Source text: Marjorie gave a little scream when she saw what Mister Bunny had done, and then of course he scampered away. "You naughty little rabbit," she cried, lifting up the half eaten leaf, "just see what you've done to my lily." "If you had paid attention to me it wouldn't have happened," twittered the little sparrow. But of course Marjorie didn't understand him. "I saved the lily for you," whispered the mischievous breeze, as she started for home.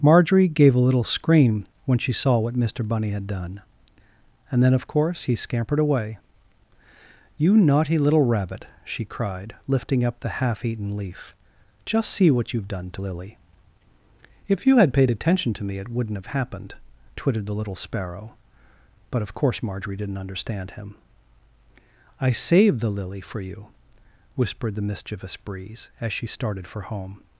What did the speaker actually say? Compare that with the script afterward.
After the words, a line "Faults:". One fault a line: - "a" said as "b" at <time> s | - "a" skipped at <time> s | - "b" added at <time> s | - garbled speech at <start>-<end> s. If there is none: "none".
Marjorie gave a little scream when she saw what Mister Bunny had done, and then of course he scampered away. "You naughty little rabbit," she cried, lifting up the half eaten leaf, "just see what you've done to lily." "If you had paid attention to me it wouldn't have happened," twittered the little sparrow. But of course Marjorie didn't understand him. "I saved the lily for you," whispered the mischievous breeze, as she started for home.
Faults:
- "my" skipped at 13.0 s